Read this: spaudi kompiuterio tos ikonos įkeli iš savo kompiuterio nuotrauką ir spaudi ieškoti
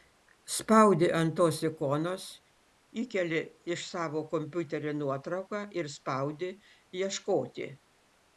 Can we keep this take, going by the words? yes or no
no